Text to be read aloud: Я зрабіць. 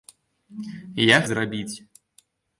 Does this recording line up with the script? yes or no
yes